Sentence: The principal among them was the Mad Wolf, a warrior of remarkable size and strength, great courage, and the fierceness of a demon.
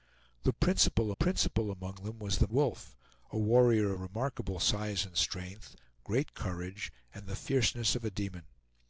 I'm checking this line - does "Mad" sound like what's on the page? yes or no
no